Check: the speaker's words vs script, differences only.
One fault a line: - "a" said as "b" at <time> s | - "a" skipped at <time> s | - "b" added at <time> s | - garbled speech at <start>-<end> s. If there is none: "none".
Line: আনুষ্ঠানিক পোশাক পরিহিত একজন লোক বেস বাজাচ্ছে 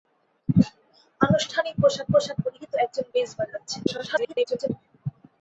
- "পোশাক" added at 2.1 s
- "লোক" skipped at 3.1 s
- garbled speech at 3.9-4.7 s